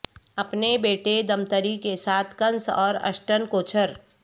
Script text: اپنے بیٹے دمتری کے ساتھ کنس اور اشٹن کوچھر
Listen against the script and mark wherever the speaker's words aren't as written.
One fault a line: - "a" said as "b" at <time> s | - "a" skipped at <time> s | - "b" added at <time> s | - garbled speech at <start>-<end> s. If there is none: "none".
none